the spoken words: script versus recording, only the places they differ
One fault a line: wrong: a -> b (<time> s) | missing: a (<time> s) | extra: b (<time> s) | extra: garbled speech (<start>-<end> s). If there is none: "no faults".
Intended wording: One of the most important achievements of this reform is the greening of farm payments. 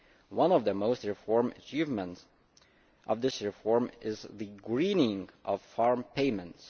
wrong: important -> reform (1.0 s)